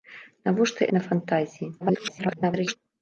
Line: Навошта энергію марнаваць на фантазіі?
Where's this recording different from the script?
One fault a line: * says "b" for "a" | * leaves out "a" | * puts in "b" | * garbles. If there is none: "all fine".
* leaves out "энергію марнаваць"
* garbles